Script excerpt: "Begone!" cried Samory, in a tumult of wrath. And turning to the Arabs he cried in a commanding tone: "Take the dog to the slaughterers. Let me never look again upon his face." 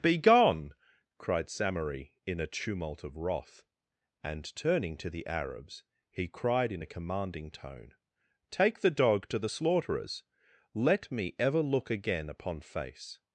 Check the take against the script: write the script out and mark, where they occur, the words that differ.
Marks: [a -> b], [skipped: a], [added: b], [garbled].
"Begone!" cried Samory, in a tumult of wrath. And turning to the Arabs he cried in a commanding tone: "Take the dog to the slaughterers. Let me [never -> ever] look again upon [skipped: his] face."